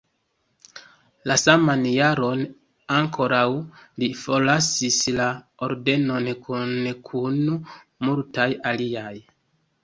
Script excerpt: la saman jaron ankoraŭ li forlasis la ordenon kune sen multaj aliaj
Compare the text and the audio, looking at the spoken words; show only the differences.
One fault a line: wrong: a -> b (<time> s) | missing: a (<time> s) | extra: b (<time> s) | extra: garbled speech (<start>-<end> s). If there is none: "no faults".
wrong: sen -> kun (7.1 s)